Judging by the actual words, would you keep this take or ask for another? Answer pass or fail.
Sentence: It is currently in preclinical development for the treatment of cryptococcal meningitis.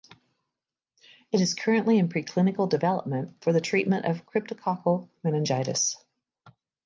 pass